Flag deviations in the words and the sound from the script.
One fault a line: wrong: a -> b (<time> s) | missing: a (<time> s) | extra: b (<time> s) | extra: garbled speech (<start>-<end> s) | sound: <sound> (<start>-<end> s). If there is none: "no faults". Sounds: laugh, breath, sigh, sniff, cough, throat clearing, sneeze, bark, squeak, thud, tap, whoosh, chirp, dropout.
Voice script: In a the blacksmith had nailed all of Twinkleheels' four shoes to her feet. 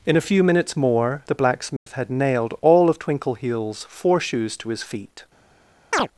extra: few minutes more (0.2 s)
sound: dropout (1.8-1.9 s)
wrong: her -> his (4.7 s)
sound: chirp (5.9-6.1 s)